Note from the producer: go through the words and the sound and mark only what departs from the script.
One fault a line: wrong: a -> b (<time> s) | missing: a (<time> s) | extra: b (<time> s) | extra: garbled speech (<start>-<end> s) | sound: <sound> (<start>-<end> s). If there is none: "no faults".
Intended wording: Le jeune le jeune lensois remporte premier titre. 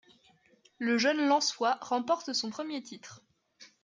missing: le jeune (1.3 s)
extra: son (2.3 s)